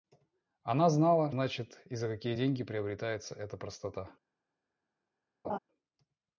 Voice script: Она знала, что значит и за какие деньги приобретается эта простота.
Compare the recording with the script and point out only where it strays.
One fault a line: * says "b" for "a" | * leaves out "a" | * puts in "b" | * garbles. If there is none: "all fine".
* leaves out "что"